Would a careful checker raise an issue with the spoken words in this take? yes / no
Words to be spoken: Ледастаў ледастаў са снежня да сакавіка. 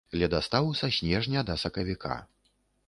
yes